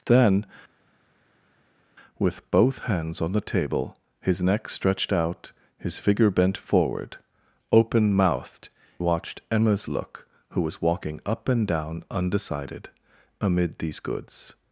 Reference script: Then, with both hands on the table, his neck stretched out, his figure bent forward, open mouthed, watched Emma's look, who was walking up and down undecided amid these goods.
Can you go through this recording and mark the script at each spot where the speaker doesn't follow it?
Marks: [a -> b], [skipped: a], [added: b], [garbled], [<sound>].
Then, with both hands on the table, his neck stretched out, his figure bent forward, open mouthed, watched Emma's look, who was walking up and down undecided amid these goods.